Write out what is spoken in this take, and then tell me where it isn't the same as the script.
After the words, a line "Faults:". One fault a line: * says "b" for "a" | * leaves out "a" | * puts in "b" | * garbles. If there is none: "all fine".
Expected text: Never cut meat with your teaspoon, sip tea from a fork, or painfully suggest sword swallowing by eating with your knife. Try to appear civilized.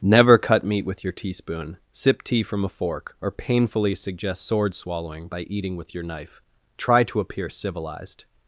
Never cut meat with your teaspoon, sip tea from a fork, or painfully suggest sword swallowing by eating with your knife. Try to appear civilized.
Faults:
all fine